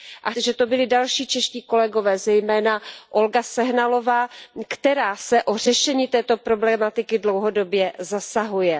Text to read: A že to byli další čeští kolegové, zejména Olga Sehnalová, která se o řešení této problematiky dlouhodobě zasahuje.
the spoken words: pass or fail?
pass